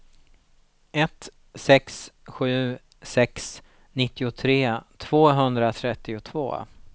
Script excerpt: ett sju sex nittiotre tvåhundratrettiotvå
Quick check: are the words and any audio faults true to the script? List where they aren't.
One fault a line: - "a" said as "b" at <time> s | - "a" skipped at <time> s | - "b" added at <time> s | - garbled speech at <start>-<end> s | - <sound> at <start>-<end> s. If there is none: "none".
- "sex" added at 1.5 s